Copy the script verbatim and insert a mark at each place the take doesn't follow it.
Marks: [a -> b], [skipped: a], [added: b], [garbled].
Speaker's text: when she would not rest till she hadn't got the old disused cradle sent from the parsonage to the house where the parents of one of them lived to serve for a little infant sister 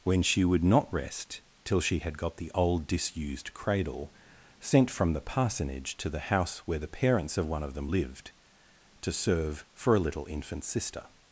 when she would not rest till she [hadn't -> had] got the old disused cradle sent from the parsonage to the house where the parents of one of them lived to serve for a little infant sister